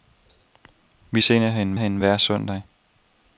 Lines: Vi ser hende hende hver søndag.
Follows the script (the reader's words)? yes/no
yes